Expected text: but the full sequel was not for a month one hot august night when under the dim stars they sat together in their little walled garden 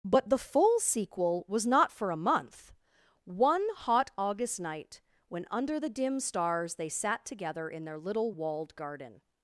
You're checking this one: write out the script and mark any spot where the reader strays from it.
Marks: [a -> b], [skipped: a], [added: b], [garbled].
but the full sequel was not for a month one hot august night when under the dim stars they sat together in their little walled garden